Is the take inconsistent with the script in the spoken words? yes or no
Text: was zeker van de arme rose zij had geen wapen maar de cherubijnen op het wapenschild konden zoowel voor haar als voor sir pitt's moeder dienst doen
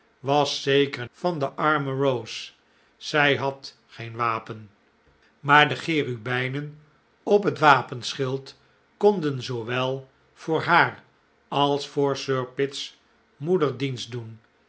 no